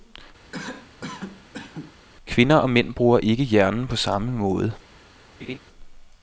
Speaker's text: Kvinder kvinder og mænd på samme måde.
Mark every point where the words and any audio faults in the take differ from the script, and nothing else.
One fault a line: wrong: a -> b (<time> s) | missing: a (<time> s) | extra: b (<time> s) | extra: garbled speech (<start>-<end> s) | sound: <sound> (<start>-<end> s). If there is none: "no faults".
sound: cough (0.5-2.0 s)
missing: kvinder (2.6 s)
extra: bruger ikke hjernen (2.9 s)
sound: laugh (5.4-5.6 s)